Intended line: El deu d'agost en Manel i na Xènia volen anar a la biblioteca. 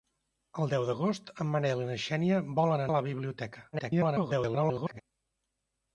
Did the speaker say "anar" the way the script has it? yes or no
no